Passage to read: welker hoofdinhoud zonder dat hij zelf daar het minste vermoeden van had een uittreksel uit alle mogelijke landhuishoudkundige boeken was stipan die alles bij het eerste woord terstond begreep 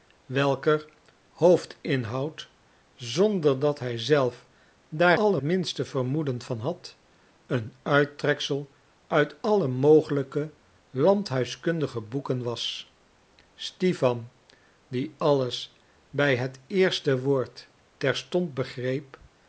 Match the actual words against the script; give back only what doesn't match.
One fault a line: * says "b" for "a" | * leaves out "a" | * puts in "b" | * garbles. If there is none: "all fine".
* says "alle" for "het"